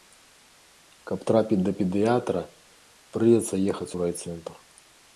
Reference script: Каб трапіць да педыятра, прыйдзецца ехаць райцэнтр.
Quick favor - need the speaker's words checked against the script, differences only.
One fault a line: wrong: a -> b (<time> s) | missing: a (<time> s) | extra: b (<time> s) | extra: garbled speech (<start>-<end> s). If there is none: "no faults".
extra: у (3.9 s)